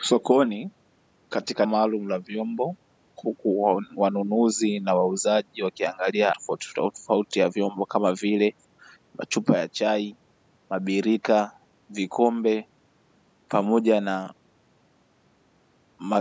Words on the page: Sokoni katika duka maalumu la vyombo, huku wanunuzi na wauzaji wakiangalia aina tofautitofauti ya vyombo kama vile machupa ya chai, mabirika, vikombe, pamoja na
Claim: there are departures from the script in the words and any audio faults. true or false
true